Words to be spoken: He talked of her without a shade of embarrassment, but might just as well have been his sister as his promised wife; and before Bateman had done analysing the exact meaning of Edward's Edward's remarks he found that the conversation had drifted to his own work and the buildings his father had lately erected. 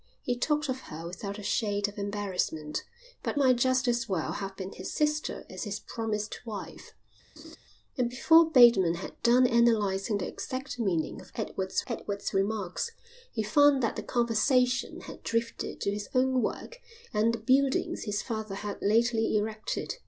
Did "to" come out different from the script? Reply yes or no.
no